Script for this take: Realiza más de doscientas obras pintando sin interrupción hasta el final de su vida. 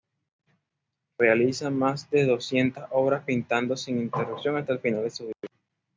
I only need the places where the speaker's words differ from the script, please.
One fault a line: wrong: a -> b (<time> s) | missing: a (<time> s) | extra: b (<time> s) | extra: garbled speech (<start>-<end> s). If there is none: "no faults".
no faults